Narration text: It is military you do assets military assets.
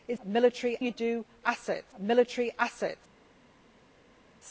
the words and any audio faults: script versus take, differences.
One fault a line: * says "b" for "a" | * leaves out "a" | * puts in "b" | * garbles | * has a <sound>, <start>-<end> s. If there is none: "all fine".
all fine